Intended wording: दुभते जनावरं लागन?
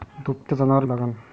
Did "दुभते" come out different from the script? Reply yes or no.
no